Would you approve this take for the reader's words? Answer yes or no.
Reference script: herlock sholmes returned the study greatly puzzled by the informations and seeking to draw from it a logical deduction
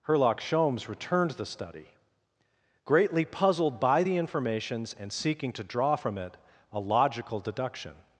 yes